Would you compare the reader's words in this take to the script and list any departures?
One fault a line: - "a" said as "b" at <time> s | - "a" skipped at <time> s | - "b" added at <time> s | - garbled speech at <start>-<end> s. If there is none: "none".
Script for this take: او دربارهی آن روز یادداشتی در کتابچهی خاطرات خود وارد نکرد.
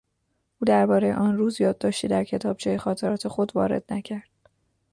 none